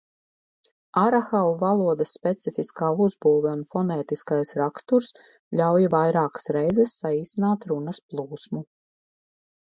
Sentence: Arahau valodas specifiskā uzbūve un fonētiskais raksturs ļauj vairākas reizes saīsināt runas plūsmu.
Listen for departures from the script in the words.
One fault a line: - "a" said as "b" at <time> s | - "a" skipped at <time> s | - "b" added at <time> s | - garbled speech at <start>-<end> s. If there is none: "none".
none